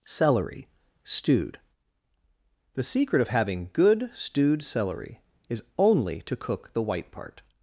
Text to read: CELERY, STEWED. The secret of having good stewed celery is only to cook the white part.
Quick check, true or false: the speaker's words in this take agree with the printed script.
true